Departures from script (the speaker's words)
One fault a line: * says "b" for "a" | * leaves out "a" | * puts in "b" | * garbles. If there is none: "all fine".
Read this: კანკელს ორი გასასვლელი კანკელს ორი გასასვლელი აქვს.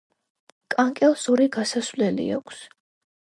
* leaves out "კანკელს ორი გასასვლელი"